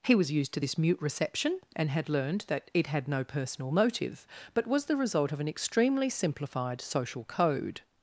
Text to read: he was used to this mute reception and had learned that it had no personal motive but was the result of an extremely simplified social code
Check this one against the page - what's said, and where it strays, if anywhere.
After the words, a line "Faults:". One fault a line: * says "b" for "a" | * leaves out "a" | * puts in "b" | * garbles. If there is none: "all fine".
he was used to this mute reception and had learned that it had no personal motive but was the result of an extremely simplified social code
Faults:
all fine